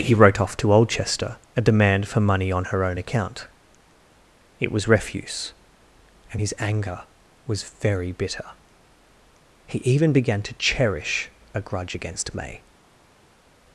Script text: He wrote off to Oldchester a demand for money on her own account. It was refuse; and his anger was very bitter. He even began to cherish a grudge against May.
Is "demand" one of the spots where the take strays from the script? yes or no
no